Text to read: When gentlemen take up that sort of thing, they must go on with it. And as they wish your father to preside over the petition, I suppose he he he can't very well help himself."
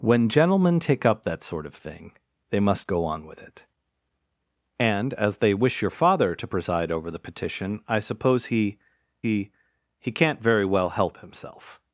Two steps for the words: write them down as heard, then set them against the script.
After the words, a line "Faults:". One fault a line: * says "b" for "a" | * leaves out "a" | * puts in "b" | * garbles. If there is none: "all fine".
When gentlemen take up that sort of thing, they must go on with it. And as they wish your father to preside over the petition, I suppose he he he can't very well help himself."
Faults:
all fine